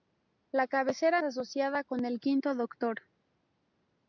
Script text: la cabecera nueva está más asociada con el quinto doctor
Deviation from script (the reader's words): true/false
true